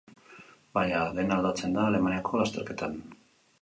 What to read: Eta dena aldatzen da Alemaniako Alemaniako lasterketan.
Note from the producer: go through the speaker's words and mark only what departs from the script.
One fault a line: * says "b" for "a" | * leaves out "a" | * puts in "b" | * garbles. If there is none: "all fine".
* says "Baina" for "Eta"
* leaves out "Alemaniako"